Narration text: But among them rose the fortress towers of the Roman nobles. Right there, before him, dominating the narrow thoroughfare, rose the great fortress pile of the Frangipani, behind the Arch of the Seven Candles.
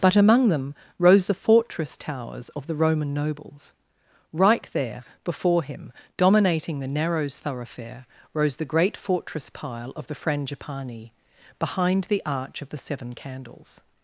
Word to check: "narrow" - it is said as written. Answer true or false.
false